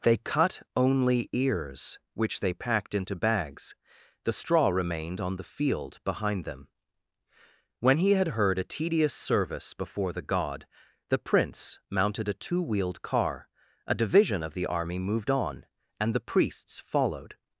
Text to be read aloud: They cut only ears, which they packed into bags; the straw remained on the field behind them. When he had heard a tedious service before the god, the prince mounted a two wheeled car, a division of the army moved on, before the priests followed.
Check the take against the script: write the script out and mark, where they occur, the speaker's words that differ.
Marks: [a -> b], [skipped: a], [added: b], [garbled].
They cut only ears, which they packed into bags; the straw remained on the field behind them. When he had heard a tedious service before the god, the prince mounted a two wheeled car, a division of the army moved on, [before -> and] the priests followed.